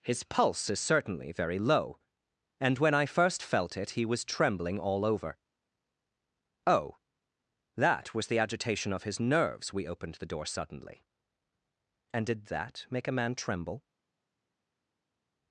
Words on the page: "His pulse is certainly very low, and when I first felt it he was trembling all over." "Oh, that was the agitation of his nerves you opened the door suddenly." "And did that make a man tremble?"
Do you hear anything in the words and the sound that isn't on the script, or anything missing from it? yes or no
yes